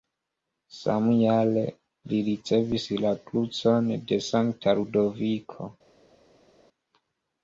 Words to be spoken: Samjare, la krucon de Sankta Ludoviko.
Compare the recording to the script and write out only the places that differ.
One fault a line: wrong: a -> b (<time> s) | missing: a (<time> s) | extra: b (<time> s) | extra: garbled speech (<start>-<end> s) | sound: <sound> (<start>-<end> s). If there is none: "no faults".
extra: li ricevis (2.1 s)